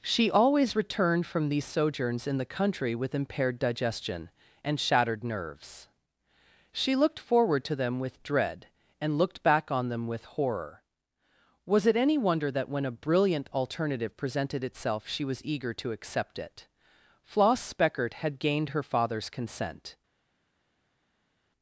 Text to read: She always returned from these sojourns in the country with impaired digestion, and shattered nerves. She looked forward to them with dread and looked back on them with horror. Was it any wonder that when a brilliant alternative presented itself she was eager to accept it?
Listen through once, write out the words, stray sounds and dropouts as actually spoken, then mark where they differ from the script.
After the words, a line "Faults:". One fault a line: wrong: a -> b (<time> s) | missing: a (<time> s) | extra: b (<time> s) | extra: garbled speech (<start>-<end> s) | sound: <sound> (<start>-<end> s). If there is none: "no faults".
She always returned from these sojourns in the country with impaired digestion, and shattered nerves. She looked forward to them with dread and looked back on them with horror. Was it any wonder that when a brilliant alternative presented itself she was eager to accept it? Floss Speckert had gained her father's consent
Faults:
extra: Floss Speckert had gained her father's consent (17.2 s)